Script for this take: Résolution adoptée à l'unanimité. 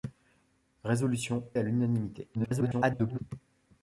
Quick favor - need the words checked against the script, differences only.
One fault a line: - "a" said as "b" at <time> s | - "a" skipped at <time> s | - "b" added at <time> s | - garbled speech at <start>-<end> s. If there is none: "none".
- "adoptée" skipped at 1.5 s
- garbled speech at 2.3-3.2 s